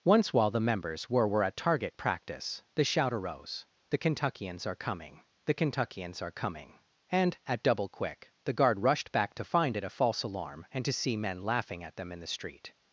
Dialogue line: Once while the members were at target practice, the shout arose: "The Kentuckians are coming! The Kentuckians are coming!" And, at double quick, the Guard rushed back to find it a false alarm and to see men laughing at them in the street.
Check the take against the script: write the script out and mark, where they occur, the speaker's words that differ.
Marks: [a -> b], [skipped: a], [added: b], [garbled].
Once while the members were [added: were] at target practice, the shout arose: "The Kentuckians are coming! The Kentuckians are coming!" And, at double quick, the Guard rushed back to find it a false alarm and to see men laughing at them in the street.